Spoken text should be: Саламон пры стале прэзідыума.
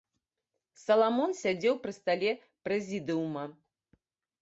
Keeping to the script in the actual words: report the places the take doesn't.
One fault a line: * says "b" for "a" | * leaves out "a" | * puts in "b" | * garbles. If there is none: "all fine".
* puts in "сядзеў"